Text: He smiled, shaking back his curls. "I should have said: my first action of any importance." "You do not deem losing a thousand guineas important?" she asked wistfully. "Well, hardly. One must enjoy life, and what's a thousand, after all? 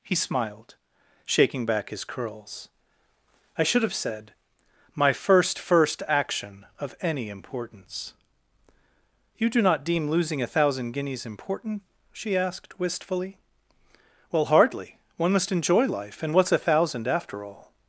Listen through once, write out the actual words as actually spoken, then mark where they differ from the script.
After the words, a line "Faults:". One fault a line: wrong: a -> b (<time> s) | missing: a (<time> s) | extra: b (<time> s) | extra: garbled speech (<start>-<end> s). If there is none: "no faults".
He smiled, shaking back his curls. "I should have said: my first first action of any importance." "You do not deem losing a thousand guineas important?" she asked wistfully. "Well, hardly. One must enjoy life, and what's a thousand, after all?
Faults:
extra: first (5.6 s)